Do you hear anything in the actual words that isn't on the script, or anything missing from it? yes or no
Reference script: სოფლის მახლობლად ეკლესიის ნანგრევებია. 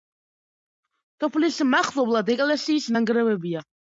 no